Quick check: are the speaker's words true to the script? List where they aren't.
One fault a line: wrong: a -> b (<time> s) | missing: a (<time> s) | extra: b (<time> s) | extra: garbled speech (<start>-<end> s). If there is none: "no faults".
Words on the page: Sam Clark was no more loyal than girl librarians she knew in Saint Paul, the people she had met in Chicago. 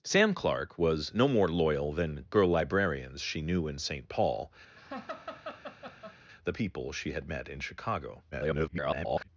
extra: garbled speech (8.3-9.3 s)